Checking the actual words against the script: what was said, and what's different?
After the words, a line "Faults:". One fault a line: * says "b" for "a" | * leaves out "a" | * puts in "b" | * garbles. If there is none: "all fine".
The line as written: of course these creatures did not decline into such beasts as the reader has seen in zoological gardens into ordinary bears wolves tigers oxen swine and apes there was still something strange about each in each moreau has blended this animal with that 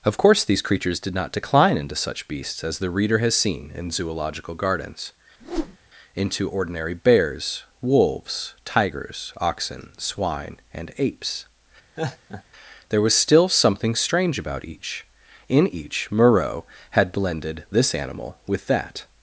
of course these creatures did not decline into such beasts as the reader has seen in zoological gardens into ordinary bears wolves tigers oxen swine and apes there was still something strange about each in each moreau had blended this animal with that
Faults:
* says "had" for "has"